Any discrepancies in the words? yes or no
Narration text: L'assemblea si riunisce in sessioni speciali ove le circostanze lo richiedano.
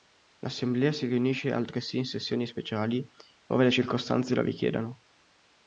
yes